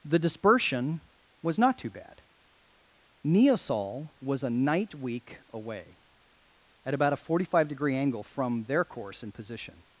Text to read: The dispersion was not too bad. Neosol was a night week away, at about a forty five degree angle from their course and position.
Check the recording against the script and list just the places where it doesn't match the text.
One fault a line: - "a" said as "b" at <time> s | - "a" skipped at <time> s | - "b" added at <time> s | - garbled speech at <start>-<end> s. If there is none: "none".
none